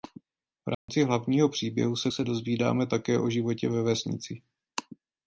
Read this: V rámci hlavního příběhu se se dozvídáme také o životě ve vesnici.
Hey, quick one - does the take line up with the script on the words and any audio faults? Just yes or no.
no